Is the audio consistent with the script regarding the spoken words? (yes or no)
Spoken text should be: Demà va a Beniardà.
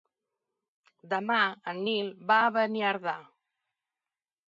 no